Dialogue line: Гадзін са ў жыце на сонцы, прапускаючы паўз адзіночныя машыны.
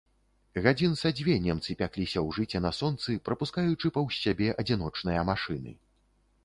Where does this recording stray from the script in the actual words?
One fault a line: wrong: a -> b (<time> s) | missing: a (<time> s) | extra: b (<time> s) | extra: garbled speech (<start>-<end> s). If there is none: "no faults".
extra: дзве немцы пякліся (1.2 s)
extra: сябе (4.2 s)